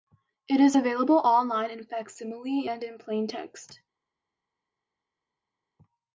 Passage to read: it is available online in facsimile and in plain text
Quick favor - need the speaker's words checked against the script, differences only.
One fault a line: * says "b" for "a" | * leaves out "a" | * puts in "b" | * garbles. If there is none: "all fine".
all fine